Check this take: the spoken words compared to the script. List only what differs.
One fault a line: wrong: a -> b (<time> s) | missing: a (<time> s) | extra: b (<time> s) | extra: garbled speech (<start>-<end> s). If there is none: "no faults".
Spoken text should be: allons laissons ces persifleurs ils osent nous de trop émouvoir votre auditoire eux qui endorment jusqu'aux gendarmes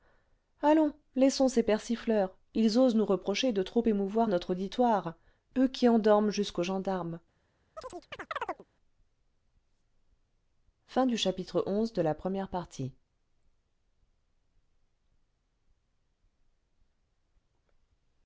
extra: reprocher (3.0 s)
wrong: votre -> notre (4.3 s)